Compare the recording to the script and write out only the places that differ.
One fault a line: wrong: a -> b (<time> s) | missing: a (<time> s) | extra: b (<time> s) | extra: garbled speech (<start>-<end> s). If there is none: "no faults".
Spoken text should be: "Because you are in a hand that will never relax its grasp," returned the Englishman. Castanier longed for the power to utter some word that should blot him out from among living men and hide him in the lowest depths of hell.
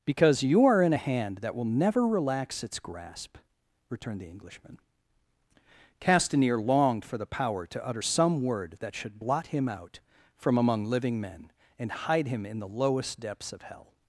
no faults